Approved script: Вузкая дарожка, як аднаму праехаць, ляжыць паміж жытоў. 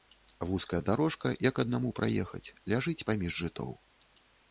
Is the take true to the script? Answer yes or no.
yes